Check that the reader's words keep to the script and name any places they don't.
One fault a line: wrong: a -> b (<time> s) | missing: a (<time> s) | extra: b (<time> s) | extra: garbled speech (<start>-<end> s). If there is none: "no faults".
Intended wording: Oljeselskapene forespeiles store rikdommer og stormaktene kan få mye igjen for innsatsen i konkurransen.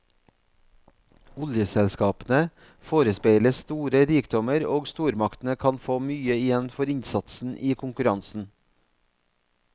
no faults